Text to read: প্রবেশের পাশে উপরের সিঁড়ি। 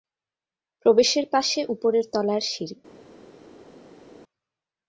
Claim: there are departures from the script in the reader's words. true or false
true